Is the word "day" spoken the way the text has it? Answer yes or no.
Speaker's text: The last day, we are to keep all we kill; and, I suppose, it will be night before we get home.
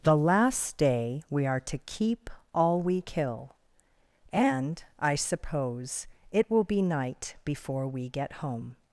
yes